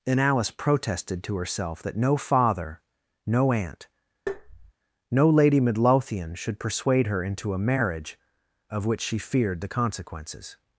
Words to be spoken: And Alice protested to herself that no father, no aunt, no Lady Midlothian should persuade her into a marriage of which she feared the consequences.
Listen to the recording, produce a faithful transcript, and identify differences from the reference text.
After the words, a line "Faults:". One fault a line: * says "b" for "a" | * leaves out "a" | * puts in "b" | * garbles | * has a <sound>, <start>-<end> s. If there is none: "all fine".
And Alice protested to herself that no father, no aunt, no Lady Midlothian should persuade her into a marriage of which she feared the consequences.
Faults:
* has a tap, 4.3-4.7 s